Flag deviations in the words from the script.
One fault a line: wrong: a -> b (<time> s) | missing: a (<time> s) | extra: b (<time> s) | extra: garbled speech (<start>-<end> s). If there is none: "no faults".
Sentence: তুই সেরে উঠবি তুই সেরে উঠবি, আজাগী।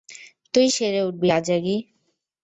missing: তুই সেরে উঠবি (1.3 s)